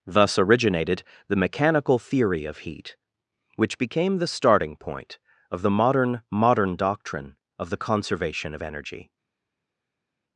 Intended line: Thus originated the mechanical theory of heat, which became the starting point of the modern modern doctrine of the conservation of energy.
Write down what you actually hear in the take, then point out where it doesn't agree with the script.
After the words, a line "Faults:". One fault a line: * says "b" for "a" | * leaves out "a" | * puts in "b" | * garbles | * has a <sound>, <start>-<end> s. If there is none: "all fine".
Thus originated the mechanical theory of heat, which became the starting point of the modern modern doctrine of the conservation of energy.
Faults:
all fine